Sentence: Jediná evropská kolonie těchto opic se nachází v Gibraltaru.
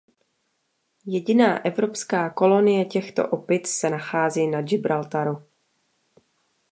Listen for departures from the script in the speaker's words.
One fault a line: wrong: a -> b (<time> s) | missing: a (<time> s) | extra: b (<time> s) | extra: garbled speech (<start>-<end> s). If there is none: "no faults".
wrong: v -> na (4.5 s)